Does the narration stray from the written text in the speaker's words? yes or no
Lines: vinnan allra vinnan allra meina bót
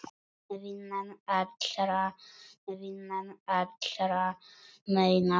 no